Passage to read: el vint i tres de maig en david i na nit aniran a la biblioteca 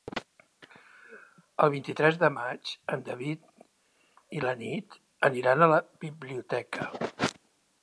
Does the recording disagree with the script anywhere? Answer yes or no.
no